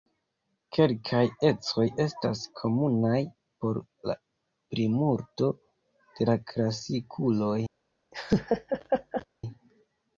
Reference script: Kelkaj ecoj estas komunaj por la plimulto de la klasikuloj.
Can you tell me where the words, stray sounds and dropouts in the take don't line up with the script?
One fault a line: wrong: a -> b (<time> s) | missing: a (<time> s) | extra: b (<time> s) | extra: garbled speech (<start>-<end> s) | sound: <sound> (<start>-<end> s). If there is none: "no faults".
sound: laugh (8.1-9.3 s)